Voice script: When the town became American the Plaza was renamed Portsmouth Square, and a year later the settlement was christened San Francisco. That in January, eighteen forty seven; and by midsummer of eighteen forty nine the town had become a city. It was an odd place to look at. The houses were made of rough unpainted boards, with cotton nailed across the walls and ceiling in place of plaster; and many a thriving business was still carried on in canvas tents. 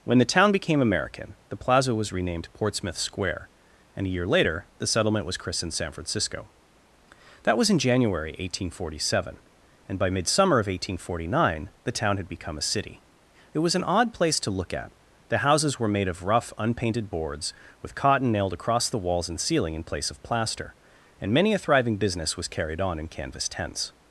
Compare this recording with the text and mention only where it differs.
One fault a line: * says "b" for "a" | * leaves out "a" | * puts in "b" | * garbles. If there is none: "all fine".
* puts in "was"
* leaves out "still"